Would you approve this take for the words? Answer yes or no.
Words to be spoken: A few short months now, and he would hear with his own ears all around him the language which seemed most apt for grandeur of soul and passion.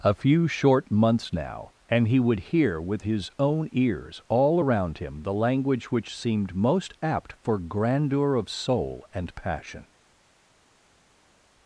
yes